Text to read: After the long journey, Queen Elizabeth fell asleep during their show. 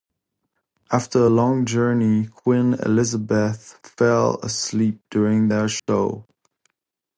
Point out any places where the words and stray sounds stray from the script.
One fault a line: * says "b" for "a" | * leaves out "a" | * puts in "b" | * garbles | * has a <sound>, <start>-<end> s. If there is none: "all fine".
* says "a" for "the"
* has a dropout, 5.8-5.9 s